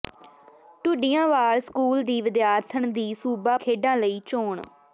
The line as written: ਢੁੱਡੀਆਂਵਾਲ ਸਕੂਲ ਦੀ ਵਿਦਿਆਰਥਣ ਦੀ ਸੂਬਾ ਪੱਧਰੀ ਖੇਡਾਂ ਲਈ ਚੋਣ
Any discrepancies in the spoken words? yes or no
yes